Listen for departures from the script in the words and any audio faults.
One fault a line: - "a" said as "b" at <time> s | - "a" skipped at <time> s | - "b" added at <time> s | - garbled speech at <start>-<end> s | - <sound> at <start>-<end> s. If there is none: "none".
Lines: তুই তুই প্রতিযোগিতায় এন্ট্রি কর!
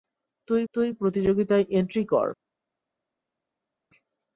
none